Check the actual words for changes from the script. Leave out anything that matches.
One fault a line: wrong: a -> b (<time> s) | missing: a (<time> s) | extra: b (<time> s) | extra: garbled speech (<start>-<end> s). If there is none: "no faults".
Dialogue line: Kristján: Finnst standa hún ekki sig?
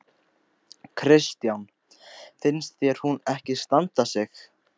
wrong: standa -> þér (2.8 s)
extra: standa (3.6 s)